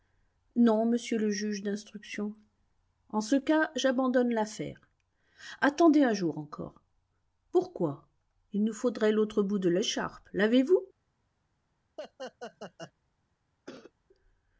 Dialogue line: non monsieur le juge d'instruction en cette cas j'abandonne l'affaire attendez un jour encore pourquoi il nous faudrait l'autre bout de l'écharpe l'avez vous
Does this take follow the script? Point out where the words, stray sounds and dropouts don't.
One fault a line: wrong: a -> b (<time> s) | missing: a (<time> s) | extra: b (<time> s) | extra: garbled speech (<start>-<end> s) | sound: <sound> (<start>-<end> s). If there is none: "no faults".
wrong: cette -> ce (3.2 s)
sound: laugh (12.0-12.9 s)
sound: cough (13.7-13.9 s)